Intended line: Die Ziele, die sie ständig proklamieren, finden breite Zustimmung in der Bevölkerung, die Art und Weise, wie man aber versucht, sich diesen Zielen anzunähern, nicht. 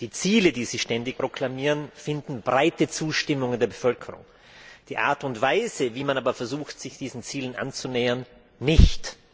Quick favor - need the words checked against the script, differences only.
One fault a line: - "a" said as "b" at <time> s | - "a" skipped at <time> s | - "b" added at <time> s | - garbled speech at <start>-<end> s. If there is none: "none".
none